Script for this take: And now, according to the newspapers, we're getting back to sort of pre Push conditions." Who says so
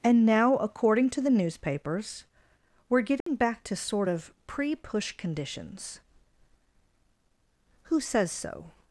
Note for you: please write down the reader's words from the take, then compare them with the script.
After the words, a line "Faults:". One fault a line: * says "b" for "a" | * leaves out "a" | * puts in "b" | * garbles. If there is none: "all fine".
And now, according to the newspapers, we're getting back to sort of pre Push conditions." Who says so
Faults:
all fine